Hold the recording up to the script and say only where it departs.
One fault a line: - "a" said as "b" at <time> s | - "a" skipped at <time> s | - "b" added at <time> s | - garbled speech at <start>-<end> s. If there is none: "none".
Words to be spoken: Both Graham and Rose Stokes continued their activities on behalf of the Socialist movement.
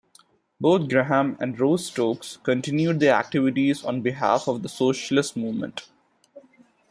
none